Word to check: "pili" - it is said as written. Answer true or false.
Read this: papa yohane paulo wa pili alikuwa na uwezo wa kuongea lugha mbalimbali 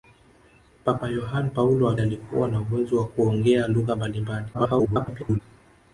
false